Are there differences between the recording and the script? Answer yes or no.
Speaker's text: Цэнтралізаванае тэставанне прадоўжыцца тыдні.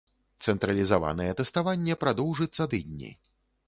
no